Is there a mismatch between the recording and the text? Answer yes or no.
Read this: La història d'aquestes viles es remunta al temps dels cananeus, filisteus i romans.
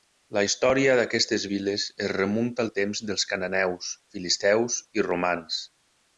no